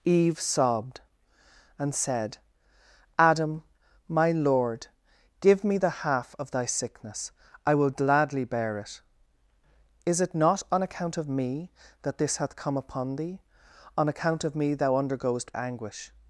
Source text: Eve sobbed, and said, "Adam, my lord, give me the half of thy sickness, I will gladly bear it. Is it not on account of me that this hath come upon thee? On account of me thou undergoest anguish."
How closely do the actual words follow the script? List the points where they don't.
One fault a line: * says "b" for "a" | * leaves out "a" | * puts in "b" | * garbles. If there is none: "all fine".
all fine